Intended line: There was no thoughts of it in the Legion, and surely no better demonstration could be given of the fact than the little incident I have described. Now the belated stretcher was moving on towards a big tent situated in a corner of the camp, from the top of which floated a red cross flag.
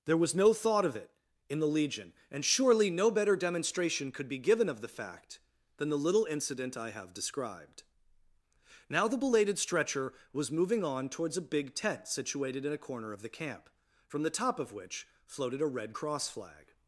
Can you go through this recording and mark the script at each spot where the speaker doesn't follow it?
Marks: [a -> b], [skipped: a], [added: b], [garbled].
There was no [thoughts -> thought] of it in the Legion, and surely no better demonstration could be given of the fact than the little incident I have described. Now the belated stretcher was moving on towards a big tent situated in a corner of the camp, from the top of which floated a red cross flag.